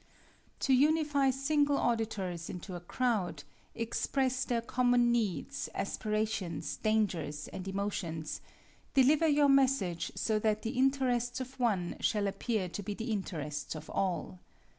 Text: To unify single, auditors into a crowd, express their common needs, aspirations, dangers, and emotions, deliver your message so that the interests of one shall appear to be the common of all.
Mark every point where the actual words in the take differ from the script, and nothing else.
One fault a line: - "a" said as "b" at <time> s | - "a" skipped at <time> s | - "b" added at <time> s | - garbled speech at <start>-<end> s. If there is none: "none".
- "common" said as "interests" at 13.1 s